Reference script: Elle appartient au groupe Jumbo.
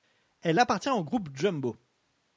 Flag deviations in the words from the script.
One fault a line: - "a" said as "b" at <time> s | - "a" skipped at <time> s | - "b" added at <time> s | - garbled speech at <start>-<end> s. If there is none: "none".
none